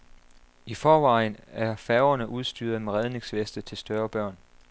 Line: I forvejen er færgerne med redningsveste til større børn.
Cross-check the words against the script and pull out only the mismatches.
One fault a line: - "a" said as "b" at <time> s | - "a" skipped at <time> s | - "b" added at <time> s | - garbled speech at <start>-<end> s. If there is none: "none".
- "udstyret" added at 2.3 s